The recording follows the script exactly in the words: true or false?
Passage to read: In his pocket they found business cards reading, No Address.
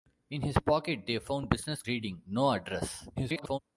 false